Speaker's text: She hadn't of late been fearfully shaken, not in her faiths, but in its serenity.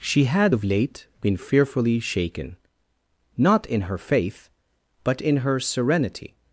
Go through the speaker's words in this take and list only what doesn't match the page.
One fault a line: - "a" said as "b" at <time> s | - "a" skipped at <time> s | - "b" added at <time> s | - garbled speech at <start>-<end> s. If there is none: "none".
- "hadn't" said as "had" at 0.2 s
- "faiths" said as "faith" at 4.0 s
- "its" said as "her" at 5.4 s